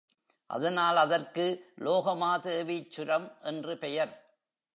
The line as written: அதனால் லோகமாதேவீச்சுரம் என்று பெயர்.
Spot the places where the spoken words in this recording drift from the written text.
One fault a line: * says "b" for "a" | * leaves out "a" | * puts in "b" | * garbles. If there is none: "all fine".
* puts in "அதற்கு"